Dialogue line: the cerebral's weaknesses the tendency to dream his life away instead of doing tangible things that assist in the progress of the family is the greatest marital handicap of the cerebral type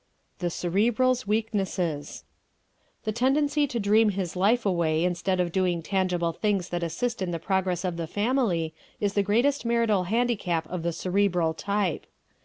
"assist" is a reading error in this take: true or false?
false